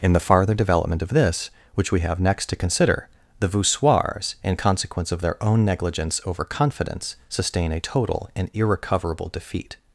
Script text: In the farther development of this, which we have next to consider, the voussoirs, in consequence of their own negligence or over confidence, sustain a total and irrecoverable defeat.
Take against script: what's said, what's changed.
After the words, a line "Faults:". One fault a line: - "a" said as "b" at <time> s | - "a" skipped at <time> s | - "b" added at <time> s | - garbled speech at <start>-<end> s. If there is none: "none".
In the farther development of this, which we have next to consider, the voussoirs, in consequence of their own negligence over confidence, sustain a total and irrecoverable defeat.
Faults:
- "or" skipped at 6.2 s